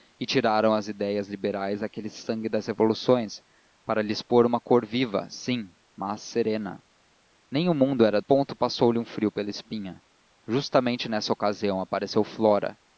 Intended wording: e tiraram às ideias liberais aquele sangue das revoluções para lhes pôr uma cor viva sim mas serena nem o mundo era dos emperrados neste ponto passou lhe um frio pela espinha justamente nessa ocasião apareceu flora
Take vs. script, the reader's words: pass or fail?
fail